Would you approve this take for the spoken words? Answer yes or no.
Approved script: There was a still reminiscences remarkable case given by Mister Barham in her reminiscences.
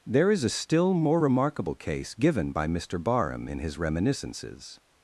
no